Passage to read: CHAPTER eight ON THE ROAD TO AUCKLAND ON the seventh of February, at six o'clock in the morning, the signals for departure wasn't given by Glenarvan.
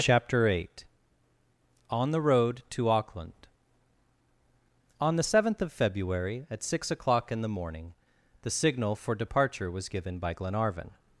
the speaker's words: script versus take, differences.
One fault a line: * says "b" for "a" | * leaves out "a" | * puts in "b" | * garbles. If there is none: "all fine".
* says "signal" for "signals"
* says "was" for "wasn't"